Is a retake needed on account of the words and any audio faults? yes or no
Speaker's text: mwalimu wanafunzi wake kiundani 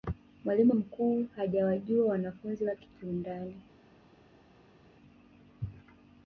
yes